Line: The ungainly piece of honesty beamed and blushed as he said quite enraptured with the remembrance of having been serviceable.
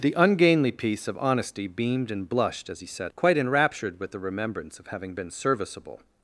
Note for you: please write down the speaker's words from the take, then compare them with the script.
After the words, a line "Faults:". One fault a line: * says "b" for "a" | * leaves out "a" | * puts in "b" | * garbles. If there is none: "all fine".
The ungainly piece of honesty beamed and blushed as he said quite enraptured with the remembrance of having been serviceable.
Faults:
all fine